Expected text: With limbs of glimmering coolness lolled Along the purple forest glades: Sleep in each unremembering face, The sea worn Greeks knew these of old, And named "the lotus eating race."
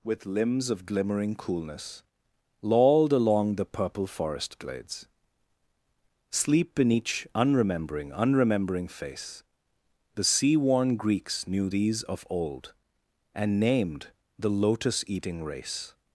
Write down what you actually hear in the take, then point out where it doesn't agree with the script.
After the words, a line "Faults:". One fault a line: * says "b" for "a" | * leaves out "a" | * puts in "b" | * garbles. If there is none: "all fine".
With limbs of glimmering coolness lolled Along the purple forest glades: Sleep in each unremembering unremembering face, The sea worn Greeks knew these of old, And named "the lotus eating race."
Faults:
* puts in "unremembering"